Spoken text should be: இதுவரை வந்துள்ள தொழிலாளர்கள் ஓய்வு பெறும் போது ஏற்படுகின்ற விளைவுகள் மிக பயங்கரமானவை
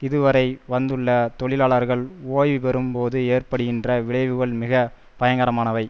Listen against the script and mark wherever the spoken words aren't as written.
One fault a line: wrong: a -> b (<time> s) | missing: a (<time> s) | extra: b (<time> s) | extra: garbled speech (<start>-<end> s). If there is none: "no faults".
no faults